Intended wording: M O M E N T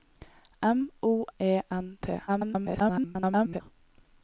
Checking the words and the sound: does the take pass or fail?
fail